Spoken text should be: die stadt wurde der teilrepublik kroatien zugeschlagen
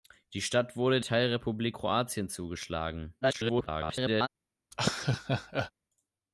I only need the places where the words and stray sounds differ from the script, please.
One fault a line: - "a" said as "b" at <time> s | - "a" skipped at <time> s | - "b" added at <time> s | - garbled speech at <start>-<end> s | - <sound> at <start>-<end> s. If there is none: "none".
- "der" skipped at 1.0 s
- garbled speech at 3.2-4.3 s
- laugh at 4.7-5.7 s